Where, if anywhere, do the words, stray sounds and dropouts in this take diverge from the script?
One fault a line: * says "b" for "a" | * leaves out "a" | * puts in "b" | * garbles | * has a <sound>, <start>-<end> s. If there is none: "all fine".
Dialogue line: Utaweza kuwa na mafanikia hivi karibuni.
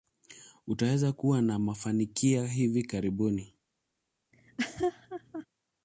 * has a laugh, 4.3-5.5 s